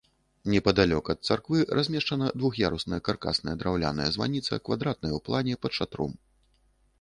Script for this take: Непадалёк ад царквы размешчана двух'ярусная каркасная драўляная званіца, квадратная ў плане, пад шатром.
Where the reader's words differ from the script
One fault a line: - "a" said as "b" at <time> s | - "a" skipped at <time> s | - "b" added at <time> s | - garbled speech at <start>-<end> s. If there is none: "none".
none